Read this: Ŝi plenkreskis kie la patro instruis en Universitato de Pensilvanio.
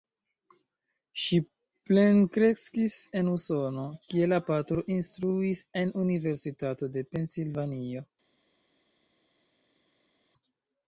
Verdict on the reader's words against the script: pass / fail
fail